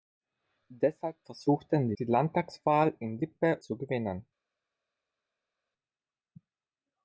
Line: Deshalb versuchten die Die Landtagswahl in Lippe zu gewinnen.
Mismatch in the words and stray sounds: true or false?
false